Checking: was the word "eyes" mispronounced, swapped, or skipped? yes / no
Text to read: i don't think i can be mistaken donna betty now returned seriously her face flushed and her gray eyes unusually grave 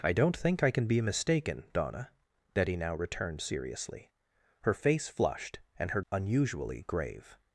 yes